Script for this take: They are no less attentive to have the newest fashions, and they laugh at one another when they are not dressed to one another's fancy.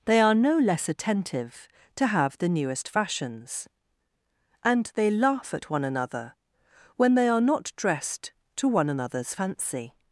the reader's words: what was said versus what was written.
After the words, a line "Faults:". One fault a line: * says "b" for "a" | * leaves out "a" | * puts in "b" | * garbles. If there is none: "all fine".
They are no less attentive to have the newest fashions, and they laugh at one another when they are not dressed to one another's fancy.
Faults:
all fine